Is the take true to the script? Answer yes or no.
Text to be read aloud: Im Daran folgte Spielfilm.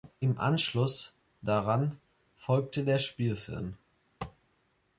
no